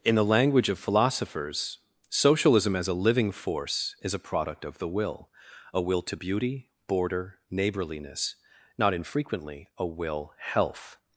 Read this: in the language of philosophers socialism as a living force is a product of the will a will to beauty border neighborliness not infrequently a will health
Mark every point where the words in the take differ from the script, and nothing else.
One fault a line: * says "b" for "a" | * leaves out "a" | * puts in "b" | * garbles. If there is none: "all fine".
all fine